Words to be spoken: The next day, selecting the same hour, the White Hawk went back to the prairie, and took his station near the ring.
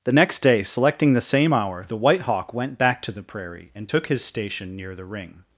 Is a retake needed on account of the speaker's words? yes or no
no